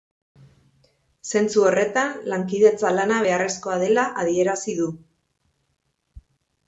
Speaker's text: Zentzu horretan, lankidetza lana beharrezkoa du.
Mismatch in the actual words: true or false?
true